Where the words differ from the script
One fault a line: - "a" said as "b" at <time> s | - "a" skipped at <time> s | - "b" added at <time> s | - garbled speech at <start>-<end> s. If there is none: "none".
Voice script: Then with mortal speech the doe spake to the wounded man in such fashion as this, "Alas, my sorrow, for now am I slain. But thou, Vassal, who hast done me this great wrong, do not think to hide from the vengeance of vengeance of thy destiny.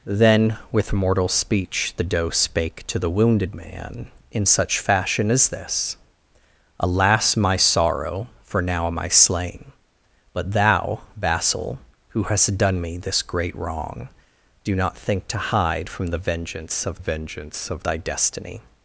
none